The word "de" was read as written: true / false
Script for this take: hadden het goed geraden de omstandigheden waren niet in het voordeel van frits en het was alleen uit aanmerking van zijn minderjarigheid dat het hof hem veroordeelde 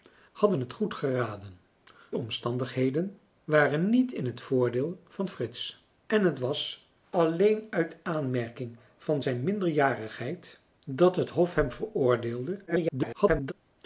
false